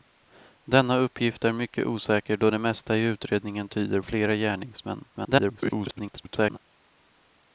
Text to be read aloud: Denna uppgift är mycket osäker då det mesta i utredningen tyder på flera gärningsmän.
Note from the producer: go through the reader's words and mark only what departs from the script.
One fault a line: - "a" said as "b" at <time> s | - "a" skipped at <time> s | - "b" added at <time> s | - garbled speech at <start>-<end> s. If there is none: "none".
- "på" skipped at 4.0 s
- garbled speech at 5.1-6.6 s